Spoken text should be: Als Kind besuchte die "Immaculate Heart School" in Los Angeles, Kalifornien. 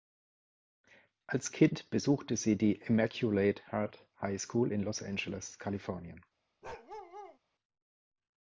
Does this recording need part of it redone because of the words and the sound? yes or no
yes